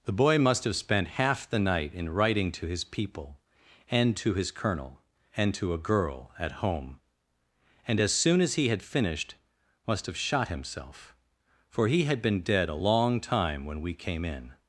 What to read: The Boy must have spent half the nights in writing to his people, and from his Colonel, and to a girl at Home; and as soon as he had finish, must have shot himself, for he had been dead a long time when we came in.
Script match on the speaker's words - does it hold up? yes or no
no